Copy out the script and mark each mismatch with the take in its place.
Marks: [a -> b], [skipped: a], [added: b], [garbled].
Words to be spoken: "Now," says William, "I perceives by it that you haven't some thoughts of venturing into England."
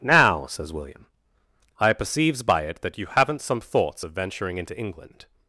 "Now," says William, "I perceives by it that you haven't some thoughts of venturing into England."